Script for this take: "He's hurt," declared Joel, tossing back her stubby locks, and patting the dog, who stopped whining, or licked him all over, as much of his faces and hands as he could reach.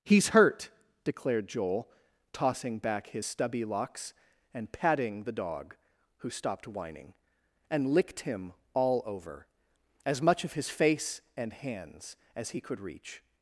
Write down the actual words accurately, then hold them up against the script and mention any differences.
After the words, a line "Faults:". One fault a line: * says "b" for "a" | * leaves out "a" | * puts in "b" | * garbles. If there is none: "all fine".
"He's hurt," declared Joel, tossing back his stubby locks, and patting the dog, who stopped whining, and licked him all over, as much of his face and hands as he could reach.
Faults:
* says "his" for "her"
* says "and" for "or"
* says "face" for "faces"